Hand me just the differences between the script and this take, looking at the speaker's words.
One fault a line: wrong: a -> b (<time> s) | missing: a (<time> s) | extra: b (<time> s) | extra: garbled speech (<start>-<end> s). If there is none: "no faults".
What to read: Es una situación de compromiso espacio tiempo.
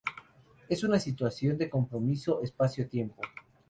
no faults